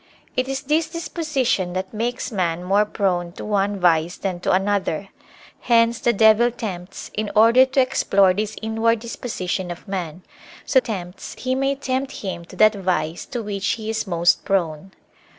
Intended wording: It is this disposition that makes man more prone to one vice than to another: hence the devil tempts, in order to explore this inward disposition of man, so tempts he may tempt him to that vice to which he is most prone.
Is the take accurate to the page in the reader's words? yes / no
yes